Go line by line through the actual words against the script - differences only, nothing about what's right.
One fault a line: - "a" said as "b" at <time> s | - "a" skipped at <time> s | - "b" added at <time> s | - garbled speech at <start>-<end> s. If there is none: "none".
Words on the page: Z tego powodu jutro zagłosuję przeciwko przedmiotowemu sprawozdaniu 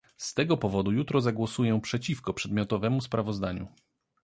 none